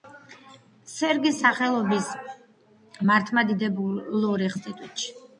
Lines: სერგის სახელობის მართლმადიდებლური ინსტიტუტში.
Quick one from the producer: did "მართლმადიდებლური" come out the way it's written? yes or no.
yes